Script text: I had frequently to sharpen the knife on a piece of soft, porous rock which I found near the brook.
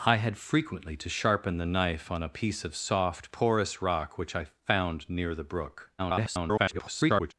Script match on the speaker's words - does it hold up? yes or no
no